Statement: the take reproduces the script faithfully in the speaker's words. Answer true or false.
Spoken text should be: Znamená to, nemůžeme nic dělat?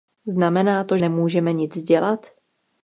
true